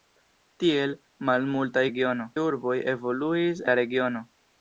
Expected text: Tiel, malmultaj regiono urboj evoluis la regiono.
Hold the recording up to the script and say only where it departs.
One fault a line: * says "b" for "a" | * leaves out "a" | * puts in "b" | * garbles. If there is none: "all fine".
all fine